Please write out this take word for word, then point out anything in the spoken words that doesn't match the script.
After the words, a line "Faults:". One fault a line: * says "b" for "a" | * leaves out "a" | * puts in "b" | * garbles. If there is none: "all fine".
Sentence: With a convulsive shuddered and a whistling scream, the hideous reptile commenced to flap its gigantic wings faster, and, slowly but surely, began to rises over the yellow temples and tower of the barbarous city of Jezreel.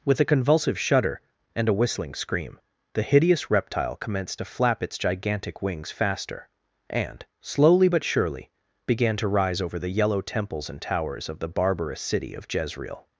With a convulsive shudder and a whistling scream, the hideous reptile commenced to flap its gigantic wings faster, and, slowly but surely, began to rise over the yellow temples and towers of the barbarous city of Jezreel.
Faults:
* says "shudder" for "shuddered"
* says "rise" for "rises"
* says "towers" for "tower"